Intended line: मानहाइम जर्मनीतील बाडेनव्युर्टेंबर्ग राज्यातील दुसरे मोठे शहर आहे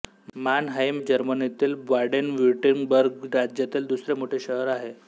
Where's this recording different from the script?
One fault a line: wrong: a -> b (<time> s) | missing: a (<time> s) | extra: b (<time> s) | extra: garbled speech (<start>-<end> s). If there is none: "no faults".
no faults